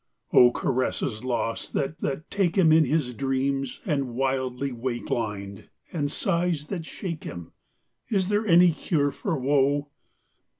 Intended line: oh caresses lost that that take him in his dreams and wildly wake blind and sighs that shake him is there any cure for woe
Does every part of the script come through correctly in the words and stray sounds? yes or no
yes